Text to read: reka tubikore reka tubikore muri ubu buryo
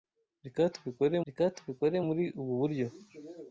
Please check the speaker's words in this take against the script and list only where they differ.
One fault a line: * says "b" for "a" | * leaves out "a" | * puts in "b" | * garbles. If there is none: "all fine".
all fine